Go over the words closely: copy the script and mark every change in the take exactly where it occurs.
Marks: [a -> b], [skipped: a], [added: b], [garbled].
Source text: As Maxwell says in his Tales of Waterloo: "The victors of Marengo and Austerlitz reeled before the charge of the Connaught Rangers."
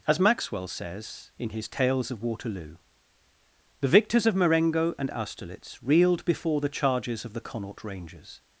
As Maxwell says in his Tales of Waterloo: "The victors of Marengo and Austerlitz reeled before the [charge -> charges] of the Connaught Rangers."